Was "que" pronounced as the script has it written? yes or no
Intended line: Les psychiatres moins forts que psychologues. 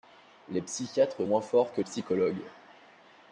yes